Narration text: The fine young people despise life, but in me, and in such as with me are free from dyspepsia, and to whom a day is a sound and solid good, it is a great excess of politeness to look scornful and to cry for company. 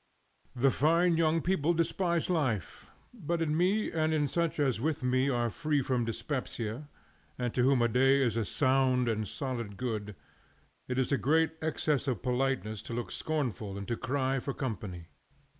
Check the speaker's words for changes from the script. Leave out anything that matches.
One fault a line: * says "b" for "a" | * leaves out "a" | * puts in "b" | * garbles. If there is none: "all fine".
all fine